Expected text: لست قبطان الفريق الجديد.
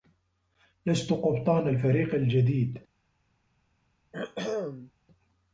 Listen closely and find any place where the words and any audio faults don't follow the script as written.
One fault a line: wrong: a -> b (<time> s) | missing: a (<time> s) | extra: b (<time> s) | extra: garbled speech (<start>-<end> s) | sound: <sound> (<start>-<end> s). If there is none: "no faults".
sound: throat clearing (4.1-4.9 s)